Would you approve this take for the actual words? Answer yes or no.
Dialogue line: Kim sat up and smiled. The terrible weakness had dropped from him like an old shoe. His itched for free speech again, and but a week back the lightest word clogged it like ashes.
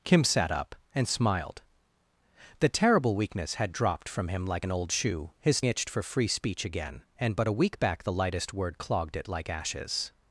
yes